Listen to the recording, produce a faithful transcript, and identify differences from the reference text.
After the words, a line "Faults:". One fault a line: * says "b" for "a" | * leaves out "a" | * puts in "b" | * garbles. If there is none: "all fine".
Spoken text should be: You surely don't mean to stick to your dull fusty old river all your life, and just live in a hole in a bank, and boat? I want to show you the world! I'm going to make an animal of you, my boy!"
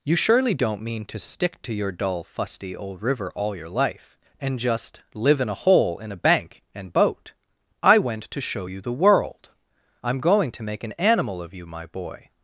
You surely don't mean to stick to your dull fusty old river all your life, and just live in a hole in a bank, and boat? I went to show you the world! I'm going to make an animal of you, my boy!"
Faults:
* says "went" for "want"